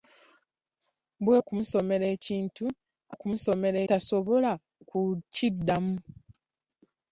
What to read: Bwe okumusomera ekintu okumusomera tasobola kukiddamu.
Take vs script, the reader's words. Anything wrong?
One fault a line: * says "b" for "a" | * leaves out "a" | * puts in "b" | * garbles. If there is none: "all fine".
all fine